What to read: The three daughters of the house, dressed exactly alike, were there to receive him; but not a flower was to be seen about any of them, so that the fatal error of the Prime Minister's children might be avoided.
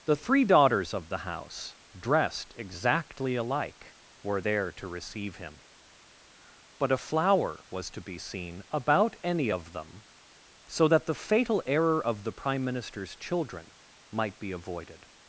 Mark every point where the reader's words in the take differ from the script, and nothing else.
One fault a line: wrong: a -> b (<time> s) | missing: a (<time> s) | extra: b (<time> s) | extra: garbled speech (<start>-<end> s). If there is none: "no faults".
missing: not (6.9 s)